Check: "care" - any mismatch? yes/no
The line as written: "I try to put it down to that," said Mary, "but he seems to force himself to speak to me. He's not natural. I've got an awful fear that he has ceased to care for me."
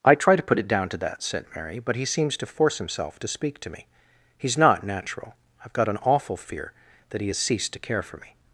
no